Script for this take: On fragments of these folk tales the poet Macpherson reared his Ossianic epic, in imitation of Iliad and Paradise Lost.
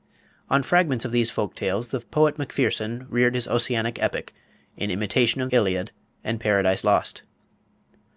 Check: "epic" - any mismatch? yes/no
no